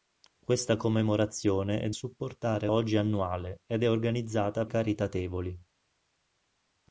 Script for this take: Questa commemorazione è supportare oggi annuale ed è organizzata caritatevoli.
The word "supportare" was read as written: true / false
true